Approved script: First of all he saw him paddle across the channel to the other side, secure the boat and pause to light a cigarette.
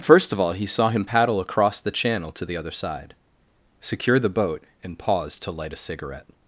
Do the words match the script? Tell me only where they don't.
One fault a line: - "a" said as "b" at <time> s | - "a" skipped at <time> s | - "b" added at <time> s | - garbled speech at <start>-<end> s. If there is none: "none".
none